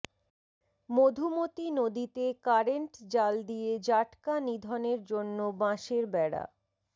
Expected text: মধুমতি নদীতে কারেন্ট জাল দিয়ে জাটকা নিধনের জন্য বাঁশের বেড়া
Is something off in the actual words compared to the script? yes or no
no